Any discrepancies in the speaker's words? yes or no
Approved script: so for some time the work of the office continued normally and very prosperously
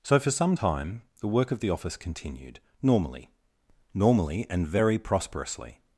yes